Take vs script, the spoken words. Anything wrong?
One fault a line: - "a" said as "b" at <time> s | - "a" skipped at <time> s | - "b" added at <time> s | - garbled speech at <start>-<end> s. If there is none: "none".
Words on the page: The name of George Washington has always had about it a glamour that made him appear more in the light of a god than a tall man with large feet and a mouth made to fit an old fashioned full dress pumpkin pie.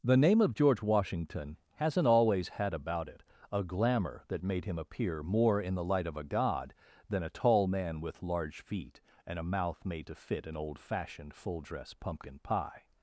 - "has" said as "hasn't" at 1.8 s